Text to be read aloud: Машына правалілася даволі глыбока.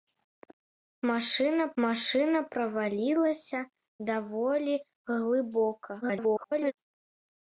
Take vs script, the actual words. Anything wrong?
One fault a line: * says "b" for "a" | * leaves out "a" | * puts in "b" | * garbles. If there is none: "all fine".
* puts in "машына"
* garbles